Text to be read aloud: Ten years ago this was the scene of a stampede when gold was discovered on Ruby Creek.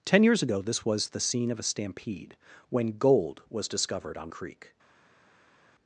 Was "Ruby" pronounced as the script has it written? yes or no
no